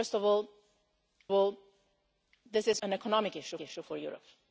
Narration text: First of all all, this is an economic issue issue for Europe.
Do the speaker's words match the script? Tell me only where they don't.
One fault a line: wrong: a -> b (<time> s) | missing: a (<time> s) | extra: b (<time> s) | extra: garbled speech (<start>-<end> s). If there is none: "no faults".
no faults